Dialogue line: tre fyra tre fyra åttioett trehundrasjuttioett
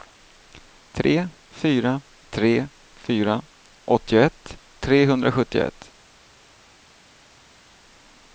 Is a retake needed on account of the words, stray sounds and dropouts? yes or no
no